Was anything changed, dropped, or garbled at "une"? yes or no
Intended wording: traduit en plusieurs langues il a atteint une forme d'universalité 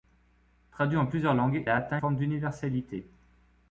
yes